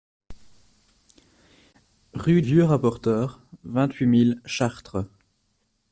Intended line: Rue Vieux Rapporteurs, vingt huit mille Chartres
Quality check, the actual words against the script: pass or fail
pass